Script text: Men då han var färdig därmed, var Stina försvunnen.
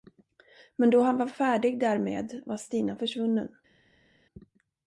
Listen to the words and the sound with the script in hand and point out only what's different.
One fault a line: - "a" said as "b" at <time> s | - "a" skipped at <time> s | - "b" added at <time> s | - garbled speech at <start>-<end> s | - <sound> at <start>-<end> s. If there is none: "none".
none